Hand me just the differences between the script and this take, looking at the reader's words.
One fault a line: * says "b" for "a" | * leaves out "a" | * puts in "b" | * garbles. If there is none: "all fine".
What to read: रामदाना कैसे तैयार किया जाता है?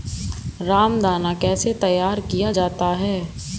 all fine